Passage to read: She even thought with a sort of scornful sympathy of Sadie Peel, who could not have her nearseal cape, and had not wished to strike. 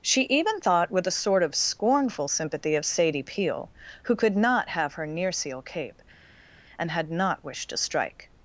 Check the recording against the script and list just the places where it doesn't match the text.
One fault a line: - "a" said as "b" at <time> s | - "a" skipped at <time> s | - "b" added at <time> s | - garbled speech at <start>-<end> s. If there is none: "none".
none